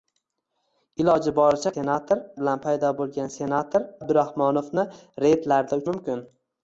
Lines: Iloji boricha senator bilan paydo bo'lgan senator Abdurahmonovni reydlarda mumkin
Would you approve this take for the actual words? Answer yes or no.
yes